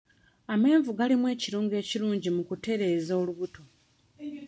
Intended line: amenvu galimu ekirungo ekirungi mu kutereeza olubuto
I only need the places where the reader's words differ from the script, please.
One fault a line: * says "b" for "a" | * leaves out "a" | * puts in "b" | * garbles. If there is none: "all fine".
all fine